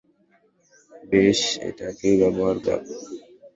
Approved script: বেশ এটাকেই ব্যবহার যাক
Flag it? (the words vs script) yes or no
no